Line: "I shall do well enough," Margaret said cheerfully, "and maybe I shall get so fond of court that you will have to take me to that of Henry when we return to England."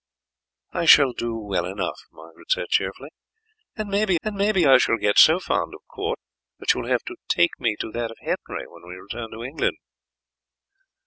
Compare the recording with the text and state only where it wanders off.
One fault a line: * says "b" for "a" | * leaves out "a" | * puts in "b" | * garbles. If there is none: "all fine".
* puts in "and maybe"